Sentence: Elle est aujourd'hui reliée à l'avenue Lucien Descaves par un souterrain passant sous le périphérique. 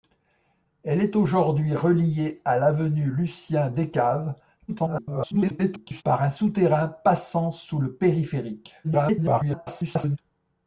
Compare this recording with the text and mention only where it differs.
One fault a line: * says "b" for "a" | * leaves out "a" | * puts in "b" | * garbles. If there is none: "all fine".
* garbles
* garbles